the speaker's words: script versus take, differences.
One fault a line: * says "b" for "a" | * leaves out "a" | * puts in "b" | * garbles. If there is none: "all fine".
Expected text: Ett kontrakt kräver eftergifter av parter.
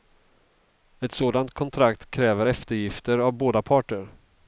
* puts in "sådant"
* puts in "båda"